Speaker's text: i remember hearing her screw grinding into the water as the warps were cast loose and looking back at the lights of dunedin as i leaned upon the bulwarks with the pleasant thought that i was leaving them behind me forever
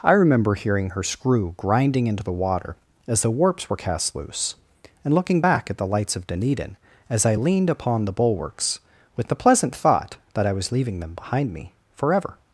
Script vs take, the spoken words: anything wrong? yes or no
no